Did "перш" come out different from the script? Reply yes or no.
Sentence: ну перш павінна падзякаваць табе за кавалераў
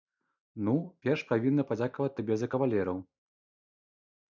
no